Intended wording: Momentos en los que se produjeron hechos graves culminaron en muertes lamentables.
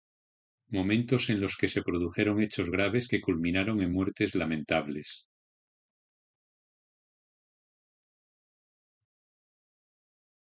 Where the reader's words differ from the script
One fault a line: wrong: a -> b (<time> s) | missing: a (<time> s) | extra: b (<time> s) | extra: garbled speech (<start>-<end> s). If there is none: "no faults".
extra: que (3.1 s)